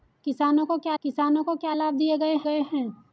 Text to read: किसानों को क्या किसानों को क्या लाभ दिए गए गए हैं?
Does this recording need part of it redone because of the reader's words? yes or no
no